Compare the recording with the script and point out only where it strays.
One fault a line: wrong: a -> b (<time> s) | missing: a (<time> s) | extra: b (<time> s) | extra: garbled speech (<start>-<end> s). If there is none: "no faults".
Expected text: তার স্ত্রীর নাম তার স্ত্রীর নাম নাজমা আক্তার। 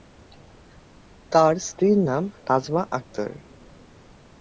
missing: তার স্ত্রীর নাম (2.2 s)